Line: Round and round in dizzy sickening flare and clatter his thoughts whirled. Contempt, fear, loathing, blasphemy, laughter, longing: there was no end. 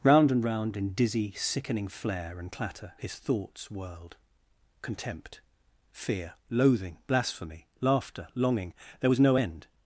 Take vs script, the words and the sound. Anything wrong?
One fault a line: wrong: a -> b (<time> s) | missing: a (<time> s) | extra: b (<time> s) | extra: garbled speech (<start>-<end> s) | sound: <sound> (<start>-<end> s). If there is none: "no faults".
no faults